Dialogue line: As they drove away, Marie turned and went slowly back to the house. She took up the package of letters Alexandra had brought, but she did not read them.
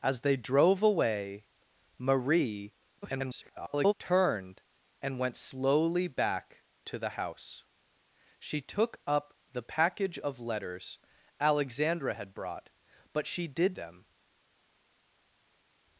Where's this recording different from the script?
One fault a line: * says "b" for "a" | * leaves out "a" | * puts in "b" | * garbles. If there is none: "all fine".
* garbles
* leaves out "not read"